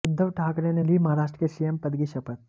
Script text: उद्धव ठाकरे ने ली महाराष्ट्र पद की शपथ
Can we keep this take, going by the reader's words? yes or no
no